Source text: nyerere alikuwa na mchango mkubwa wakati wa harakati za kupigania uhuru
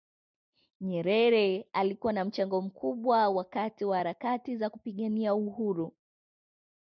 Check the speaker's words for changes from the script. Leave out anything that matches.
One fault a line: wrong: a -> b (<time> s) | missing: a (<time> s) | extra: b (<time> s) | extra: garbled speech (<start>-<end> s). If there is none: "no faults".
no faults